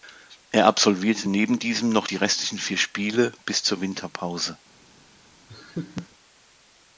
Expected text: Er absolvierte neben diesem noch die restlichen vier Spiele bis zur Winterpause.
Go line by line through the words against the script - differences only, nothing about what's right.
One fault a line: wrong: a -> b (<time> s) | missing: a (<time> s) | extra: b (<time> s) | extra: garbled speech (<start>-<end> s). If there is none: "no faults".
no faults